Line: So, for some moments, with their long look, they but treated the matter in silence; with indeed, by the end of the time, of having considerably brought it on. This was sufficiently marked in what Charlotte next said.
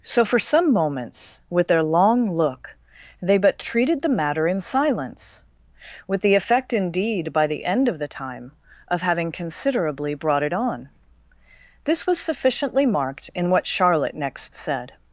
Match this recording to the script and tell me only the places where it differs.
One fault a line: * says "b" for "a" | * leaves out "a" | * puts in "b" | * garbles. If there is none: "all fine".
* puts in "the effect"